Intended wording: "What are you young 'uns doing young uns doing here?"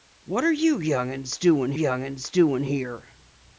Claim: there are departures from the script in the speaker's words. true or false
false